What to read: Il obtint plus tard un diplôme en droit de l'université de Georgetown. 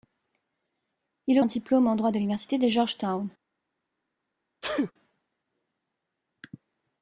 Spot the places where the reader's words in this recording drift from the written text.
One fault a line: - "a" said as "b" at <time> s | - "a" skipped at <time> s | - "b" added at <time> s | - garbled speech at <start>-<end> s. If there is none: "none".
- "obtint plus tard" skipped at 1.4 s